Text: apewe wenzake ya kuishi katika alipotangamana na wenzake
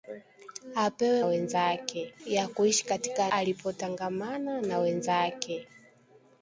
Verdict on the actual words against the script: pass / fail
pass